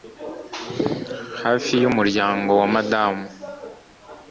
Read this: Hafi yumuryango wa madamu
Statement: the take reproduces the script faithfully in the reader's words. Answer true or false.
true